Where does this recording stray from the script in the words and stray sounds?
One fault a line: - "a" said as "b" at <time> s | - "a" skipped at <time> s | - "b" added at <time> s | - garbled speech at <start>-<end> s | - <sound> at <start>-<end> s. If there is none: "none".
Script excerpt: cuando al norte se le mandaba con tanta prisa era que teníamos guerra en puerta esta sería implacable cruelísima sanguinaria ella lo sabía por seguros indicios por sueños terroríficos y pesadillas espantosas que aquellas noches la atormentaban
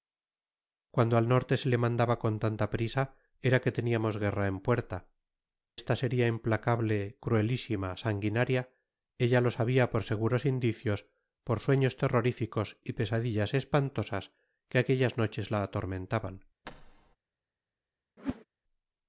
- thud at 16.6-17.2 s
- whoosh at 18.2-18.4 s